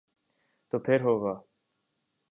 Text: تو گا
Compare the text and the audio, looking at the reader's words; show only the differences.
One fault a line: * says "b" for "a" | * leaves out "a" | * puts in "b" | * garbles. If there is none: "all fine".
* puts in "پھر ہو"